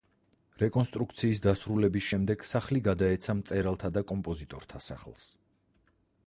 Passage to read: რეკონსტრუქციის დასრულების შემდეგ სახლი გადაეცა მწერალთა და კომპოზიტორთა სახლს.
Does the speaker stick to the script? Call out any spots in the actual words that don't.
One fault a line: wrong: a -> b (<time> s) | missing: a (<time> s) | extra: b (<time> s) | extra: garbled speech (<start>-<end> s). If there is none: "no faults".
no faults